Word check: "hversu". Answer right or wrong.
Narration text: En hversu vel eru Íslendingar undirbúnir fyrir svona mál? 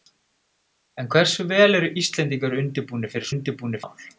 right